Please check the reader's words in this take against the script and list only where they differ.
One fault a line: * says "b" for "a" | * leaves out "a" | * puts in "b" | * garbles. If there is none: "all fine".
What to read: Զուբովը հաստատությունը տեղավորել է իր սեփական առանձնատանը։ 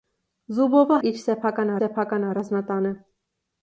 * leaves out "հաստատությունը տեղավորել"
* puts in "սեփական"